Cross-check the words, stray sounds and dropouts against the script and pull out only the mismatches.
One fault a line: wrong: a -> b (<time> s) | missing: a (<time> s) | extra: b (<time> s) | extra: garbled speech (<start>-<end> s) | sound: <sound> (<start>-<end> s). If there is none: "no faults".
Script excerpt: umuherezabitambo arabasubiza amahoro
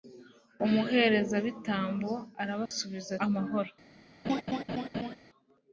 sound: dropout (2.7-2.7 s)
sound: laugh (4.2-5.2 s)